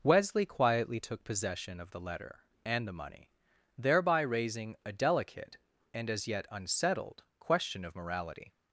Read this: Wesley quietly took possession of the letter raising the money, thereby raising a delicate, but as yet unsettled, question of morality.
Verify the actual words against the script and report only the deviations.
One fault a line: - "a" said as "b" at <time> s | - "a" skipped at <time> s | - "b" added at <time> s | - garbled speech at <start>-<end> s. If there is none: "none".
- "raising" said as "and" at 2.6 s
- "but" said as "and" at 5.9 s